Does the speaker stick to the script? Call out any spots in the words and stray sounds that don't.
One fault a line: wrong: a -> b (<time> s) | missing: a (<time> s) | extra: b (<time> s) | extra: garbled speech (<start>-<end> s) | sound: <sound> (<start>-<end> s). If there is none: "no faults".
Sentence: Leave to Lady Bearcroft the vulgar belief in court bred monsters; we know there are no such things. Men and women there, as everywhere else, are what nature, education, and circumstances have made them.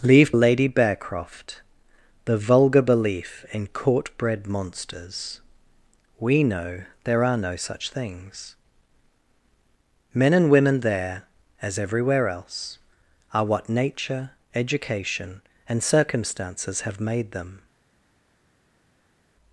missing: to (0.3 s)